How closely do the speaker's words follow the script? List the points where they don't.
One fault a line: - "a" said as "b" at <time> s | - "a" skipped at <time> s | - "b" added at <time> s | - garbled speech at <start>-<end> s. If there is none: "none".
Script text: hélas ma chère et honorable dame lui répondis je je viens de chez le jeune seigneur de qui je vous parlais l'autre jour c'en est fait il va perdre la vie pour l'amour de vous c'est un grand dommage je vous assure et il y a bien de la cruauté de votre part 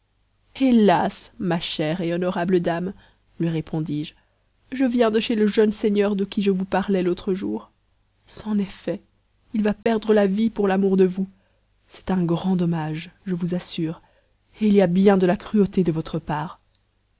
none